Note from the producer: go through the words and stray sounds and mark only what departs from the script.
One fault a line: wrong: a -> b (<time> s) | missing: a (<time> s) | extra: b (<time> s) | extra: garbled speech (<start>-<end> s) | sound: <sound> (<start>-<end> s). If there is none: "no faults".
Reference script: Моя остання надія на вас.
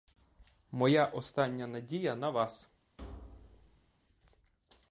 sound: thud (3.0-3.9 s)